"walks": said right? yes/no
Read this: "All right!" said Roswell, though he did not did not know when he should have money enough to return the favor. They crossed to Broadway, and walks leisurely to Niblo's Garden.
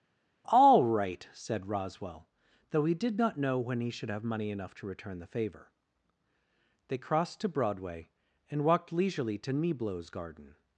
no